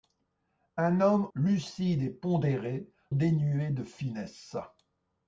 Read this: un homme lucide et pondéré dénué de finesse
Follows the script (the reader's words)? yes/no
yes